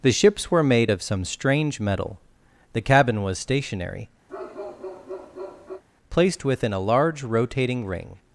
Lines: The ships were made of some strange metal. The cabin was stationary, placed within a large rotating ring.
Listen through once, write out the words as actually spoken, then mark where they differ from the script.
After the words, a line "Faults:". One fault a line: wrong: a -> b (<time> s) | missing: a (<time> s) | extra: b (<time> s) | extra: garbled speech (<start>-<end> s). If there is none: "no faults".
The ships were made of some strange metal. The cabin was stationary, placed within a large rotating ring.
Faults:
no faults